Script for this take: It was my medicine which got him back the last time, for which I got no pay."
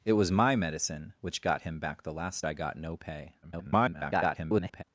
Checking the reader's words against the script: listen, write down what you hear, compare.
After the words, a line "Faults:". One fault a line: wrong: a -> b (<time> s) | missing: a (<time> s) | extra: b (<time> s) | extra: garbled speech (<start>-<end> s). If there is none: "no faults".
It was my medicine which got him back the last I got no pay." [garbled]
Faults:
missing: time for which (2.4 s)
extra: garbled speech (3.4-4.8 s)